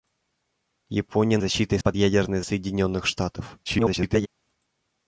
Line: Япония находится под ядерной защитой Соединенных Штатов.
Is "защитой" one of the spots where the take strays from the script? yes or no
yes